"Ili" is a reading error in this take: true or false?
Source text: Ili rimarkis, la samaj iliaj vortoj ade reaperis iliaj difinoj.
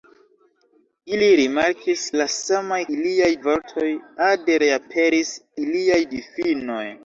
false